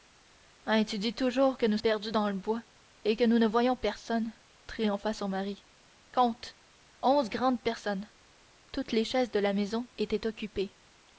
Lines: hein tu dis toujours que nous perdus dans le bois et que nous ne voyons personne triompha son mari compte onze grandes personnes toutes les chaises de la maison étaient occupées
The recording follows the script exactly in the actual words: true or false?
true